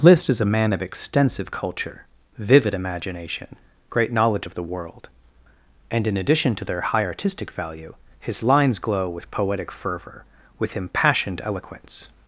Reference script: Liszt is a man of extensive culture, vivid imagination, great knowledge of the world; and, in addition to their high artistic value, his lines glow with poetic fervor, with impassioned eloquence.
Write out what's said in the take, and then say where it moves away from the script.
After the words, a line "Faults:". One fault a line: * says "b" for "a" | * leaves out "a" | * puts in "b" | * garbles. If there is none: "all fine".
Liszt is a man of extensive culture, vivid imagination, great knowledge of the world; and, in addition to their high artistic value, his lines glow with poetic fervor, with impassioned eloquence.
Faults:
all fine